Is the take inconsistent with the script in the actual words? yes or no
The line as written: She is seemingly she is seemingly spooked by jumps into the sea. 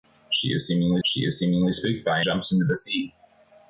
no